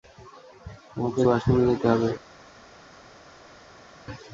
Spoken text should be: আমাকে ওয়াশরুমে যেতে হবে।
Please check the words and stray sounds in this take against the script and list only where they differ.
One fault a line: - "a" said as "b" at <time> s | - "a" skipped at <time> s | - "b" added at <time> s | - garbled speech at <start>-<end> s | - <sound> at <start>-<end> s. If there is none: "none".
none